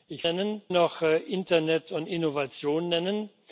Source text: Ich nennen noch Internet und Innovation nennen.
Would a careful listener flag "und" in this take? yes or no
no